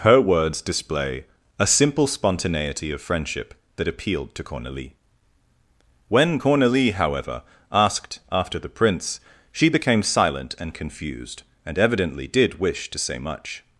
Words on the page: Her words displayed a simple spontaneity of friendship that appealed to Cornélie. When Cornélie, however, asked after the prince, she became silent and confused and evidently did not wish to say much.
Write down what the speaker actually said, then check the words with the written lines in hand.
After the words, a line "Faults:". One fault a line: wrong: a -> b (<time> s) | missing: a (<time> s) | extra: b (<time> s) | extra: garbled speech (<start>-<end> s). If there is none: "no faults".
Her words display a simple spontaneity of friendship that appealed to Cornélie. When Cornélie, however, asked after the prince, she became silent and confused and evidently did wish to say much.
Faults:
wrong: displayed -> display (0.6 s)
missing: not (12.6 s)